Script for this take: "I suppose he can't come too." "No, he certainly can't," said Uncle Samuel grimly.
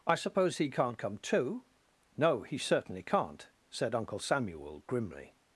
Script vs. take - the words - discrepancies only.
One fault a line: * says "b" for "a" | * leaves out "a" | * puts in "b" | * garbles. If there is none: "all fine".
all fine